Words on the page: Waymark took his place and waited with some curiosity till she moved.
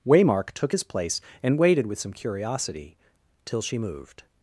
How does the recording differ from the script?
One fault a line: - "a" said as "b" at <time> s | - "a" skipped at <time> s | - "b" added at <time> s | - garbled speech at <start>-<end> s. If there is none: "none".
none